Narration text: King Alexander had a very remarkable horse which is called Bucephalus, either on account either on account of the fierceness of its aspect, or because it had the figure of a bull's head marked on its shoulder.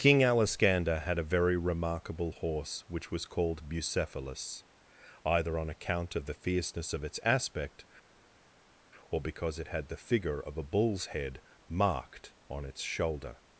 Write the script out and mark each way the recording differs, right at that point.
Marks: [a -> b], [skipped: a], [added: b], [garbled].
King Alexander had a very remarkable horse which [is -> was] called Bucephalus, either on account [skipped: either on account] of the fierceness of its aspect, or because it had the figure of a bull's head marked on its shoulder.